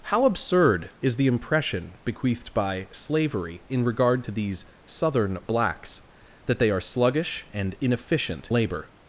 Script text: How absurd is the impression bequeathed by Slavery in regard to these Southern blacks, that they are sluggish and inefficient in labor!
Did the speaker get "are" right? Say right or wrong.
right